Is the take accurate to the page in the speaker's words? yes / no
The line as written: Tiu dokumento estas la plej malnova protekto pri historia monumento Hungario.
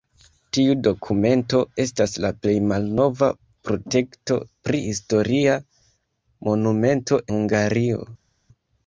yes